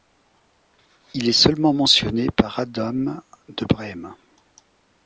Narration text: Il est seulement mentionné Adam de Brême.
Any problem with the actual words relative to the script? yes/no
yes